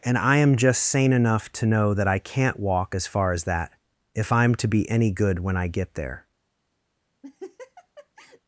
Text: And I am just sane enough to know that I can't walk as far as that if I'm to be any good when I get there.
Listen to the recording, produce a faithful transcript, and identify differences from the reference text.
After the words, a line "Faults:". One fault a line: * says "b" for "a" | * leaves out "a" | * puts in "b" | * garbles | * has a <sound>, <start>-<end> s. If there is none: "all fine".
And I am just sane enough to know that I can't walk as far as that if I'm to be any good when I get there.
Faults:
* has a laugh, 7.2-8.4 s